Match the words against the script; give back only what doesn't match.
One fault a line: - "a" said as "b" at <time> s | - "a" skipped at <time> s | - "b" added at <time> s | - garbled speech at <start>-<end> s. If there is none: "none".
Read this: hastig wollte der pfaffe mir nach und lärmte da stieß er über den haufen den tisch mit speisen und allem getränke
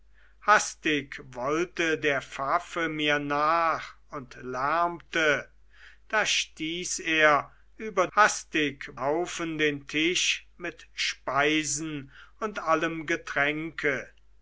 - "den" said as "hastig" at 8.2 s